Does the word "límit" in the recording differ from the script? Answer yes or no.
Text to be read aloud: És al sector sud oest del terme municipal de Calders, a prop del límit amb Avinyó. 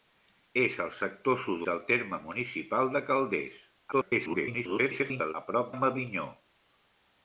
yes